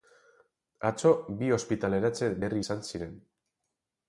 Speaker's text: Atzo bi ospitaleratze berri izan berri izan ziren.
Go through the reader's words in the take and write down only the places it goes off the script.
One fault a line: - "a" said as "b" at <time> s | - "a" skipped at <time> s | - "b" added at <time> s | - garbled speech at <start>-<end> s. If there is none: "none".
- "berri izan" skipped at 2.8 s